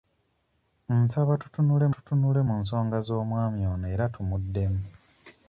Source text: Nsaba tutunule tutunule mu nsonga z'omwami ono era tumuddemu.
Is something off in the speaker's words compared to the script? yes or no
no